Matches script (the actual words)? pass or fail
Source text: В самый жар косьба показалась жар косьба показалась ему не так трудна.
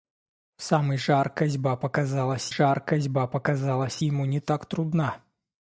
pass